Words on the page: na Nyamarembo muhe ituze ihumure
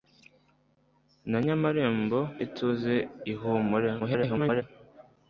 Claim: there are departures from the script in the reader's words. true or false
true